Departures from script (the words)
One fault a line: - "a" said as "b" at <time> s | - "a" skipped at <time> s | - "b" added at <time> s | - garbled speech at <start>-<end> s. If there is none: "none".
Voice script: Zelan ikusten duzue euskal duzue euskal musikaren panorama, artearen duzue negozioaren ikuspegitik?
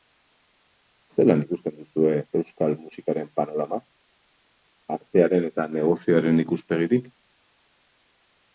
- "duzue euskal" skipped at 2.8 s
- "duzue" said as "eta" at 5.5 s